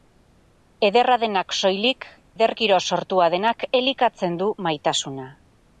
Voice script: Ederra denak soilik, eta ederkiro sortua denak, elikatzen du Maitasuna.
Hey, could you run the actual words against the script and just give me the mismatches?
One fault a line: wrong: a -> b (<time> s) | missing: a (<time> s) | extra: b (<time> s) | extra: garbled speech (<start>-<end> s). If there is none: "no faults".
missing: eta (2.1 s)